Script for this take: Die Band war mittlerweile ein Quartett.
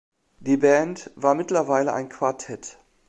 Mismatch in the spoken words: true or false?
false